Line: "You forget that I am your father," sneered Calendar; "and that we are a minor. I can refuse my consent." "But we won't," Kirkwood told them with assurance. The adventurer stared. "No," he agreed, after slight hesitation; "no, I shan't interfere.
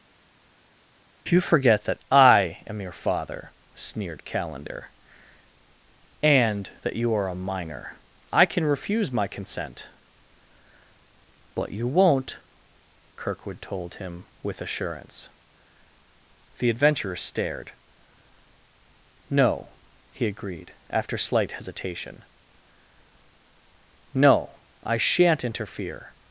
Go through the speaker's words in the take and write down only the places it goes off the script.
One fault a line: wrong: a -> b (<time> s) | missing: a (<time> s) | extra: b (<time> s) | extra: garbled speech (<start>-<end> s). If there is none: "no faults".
wrong: we -> you (6.9 s)
wrong: we -> you (11.7 s)
wrong: them -> him (13.9 s)